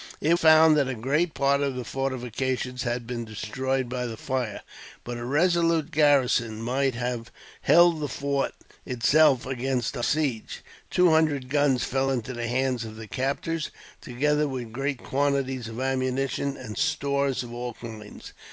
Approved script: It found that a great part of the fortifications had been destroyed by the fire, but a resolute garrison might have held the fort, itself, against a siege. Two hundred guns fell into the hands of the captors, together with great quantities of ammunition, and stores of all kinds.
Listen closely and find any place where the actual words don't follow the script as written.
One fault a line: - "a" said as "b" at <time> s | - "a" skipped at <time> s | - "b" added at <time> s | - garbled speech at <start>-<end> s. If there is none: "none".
none